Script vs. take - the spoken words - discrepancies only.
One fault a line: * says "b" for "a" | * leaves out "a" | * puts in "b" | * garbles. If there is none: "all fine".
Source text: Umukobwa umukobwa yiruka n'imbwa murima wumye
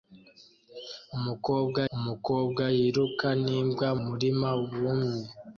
all fine